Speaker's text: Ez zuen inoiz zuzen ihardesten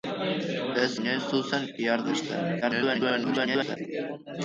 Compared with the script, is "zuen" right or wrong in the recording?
wrong